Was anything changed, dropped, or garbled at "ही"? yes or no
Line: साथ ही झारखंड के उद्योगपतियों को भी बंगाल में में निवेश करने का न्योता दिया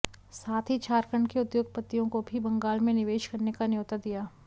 no